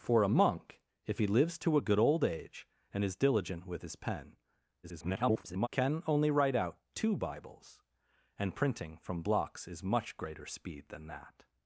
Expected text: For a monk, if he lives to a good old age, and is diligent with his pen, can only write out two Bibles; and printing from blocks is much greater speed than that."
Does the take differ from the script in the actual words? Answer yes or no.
yes